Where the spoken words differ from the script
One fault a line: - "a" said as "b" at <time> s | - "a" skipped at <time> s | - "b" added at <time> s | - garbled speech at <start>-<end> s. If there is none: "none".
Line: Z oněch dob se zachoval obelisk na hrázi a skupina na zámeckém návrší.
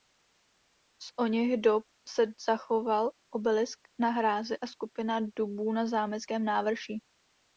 - "dubů" added at 5.4 s